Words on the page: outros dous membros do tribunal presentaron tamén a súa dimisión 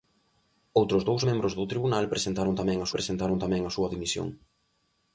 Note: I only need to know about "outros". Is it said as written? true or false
true